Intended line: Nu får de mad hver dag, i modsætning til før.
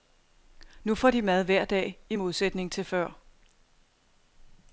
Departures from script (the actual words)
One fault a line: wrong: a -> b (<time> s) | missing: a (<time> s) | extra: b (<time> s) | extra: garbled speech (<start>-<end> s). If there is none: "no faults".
no faults